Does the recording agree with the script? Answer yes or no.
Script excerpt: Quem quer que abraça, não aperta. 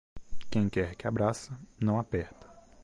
yes